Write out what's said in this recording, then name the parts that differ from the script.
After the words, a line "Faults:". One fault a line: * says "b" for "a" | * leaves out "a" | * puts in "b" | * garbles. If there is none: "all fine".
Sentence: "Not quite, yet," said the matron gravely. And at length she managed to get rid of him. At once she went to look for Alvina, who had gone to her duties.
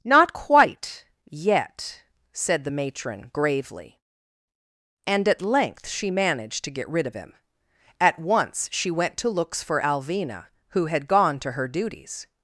"Not quite, yet," said the matron gravely. And at length she managed to get rid of him. At once she went to looks for Alvina, who had gone to her duties.
Faults:
* says "looks" for "look"